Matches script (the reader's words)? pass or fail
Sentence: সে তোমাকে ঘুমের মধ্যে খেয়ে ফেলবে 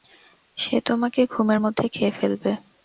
pass